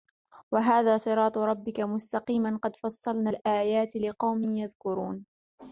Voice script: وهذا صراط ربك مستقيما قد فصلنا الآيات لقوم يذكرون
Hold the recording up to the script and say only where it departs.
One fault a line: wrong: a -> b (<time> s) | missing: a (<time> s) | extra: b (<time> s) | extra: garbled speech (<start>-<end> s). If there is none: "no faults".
no faults